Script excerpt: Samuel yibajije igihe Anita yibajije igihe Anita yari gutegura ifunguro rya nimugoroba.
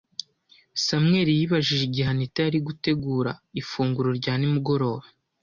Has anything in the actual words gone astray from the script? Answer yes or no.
yes